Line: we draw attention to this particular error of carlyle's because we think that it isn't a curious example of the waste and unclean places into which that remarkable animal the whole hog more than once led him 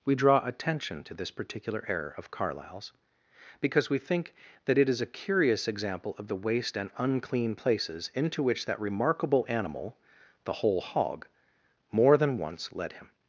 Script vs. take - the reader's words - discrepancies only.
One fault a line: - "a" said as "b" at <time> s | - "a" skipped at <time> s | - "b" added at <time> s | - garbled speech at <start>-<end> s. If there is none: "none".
- "isn't" said as "is" at 4.9 s